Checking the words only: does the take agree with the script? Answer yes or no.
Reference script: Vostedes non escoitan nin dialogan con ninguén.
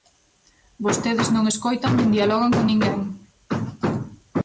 yes